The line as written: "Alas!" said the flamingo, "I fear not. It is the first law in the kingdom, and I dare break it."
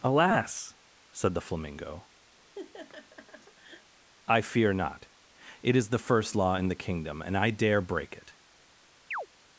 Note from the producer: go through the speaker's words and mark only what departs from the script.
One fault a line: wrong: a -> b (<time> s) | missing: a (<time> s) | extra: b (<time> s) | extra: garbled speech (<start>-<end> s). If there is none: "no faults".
no faults